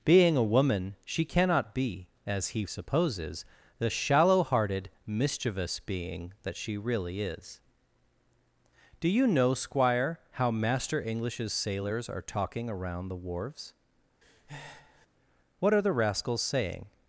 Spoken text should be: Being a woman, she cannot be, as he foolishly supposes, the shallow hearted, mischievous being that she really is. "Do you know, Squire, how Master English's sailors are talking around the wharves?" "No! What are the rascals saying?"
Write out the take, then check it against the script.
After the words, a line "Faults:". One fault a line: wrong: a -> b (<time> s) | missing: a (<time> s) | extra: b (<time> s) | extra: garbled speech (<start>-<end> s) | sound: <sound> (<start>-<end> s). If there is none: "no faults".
Being a woman, she cannot be, as he supposes, the shallow hearted, mischievous being that she really is. "Do you know, Squire, how Master English's sailors are talking around the wharves! "What are the rascals saying?"
Faults:
missing: foolishly (2.6 s)
missing: No (13.7 s)
sound: breath (14.2-15.1 s)